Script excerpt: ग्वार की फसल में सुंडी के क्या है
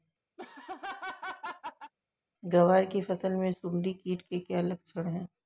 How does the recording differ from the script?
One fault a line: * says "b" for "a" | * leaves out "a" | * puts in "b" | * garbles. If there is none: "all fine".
* puts in "कीट"
* puts in "लक्षण"